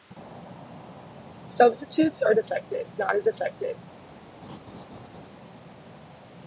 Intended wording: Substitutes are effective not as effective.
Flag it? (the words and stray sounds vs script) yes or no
yes